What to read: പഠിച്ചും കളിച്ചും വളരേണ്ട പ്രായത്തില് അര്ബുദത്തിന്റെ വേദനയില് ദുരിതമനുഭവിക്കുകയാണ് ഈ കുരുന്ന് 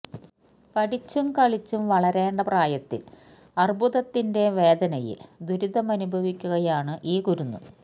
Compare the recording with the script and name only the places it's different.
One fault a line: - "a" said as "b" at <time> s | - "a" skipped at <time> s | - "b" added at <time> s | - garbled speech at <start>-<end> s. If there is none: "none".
none